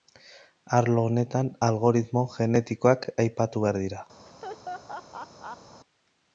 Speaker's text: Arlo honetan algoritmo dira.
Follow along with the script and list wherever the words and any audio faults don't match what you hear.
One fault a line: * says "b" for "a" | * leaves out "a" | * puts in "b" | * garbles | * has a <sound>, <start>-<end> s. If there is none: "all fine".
* puts in "genetikoak aipatu behar"
* has a laugh, 4.3-5.8 s